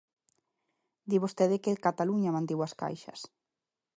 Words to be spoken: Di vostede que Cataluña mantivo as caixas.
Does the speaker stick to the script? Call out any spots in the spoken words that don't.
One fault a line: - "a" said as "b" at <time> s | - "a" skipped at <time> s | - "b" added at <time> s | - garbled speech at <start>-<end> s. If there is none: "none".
none